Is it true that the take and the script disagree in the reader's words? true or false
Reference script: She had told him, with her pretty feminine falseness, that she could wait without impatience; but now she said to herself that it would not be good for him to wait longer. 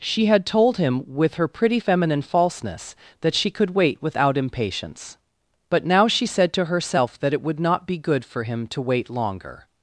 false